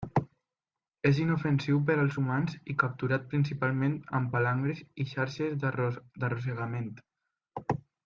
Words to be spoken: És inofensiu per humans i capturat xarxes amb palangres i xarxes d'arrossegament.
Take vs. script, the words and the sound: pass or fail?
fail